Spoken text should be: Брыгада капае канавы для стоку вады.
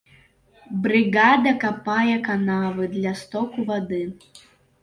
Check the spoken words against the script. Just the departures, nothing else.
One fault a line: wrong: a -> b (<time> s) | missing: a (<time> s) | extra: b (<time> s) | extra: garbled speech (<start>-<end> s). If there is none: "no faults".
no faults